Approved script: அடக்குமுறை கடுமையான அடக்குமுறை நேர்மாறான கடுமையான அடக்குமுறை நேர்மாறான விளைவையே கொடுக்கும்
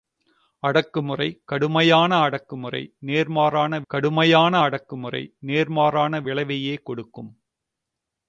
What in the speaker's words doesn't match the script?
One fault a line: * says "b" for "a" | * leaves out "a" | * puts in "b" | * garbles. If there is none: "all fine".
all fine